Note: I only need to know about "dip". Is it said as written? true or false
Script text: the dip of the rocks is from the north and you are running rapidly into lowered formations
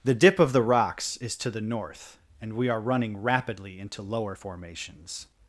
true